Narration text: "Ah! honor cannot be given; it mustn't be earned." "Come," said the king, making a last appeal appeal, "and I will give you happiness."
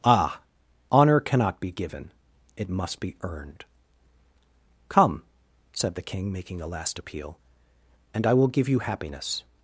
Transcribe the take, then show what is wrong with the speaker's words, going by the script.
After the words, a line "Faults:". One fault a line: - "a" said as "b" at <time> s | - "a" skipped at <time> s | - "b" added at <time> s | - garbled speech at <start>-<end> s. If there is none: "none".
"Ah! honor cannot be given; it must be earned." "Come," said the king, making a last appeal, "and I will give you happiness."
Faults:
- "mustn't" said as "must" at 2.7 s
- "appeal" skipped at 7.4 s